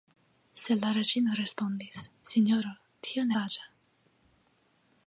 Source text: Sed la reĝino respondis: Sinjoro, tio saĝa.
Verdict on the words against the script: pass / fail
pass